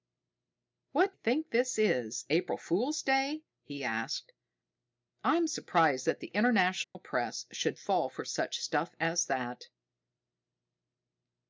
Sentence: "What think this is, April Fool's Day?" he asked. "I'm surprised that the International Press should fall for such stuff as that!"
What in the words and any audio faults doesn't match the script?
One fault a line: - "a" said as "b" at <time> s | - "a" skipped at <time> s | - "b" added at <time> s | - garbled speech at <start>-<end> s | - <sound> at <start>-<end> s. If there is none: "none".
- dropout at 6.8-7.0 s